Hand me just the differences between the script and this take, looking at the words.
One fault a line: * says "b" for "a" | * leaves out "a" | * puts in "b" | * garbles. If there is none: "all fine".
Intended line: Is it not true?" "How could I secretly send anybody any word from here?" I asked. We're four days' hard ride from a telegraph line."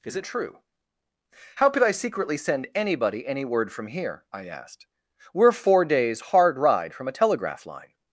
* leaves out "not"